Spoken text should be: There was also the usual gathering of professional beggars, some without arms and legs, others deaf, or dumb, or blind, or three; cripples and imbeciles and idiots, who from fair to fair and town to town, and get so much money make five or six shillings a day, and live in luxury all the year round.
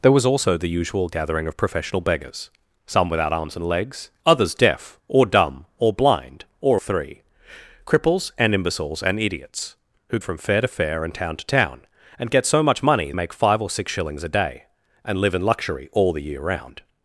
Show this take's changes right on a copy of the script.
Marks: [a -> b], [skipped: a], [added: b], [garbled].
There was also the usual gathering of professional beggars, some without arms and legs, others deaf, or dumb, or blind, or three; cripples and imbeciles and idiots, who from fair to fair and town to town, and get so much money make five or six shillings a day, and live in luxury all the year round.